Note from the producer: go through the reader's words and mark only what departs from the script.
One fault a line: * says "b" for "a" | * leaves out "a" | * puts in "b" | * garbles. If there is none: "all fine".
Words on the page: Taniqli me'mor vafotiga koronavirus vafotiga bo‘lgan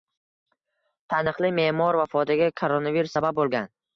* says "sabab" for "vafotiga"